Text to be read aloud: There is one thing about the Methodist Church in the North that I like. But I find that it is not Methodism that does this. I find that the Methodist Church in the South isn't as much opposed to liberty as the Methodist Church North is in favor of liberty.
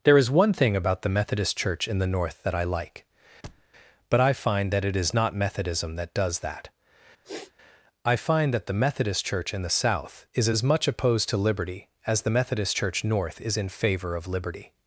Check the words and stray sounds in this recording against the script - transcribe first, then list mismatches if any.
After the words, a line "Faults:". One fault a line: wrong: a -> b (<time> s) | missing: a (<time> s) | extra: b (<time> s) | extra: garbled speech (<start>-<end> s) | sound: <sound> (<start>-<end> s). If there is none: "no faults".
There is one thing about the Methodist Church in the North that I like. But I find that it is not Methodism that does that. I find that the Methodist Church in the South is as much opposed to liberty as the Methodist Church North is in favor of liberty.
Faults:
sound: thud (3.4-3.7 s)
wrong: this -> that (6.4 s)
sound: sniff (7.2-7.5 s)
wrong: isn't -> is (10.3 s)